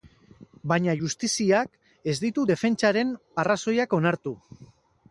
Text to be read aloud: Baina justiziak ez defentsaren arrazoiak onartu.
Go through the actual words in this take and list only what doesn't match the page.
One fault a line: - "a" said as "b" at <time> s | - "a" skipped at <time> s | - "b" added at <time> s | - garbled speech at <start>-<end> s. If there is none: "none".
- "ditu" added at 2.3 s